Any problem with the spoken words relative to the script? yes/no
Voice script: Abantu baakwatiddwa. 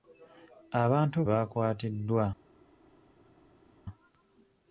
no